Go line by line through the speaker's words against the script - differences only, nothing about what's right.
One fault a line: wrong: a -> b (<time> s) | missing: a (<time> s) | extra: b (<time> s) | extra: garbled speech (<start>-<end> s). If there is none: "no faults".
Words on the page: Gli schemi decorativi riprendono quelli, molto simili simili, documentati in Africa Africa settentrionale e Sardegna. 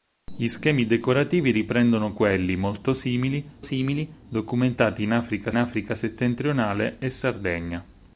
no faults